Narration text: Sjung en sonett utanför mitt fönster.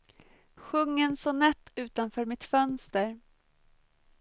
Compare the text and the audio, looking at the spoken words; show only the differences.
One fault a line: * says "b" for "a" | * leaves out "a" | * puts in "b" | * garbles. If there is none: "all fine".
all fine